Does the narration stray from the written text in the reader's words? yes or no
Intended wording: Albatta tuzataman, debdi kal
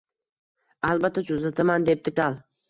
no